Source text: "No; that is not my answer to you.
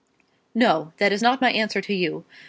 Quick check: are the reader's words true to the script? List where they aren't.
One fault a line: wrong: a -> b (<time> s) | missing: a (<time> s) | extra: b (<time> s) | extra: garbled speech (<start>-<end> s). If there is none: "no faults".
no faults